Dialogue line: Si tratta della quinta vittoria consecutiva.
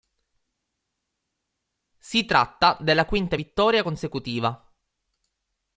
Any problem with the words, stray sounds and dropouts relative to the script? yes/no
no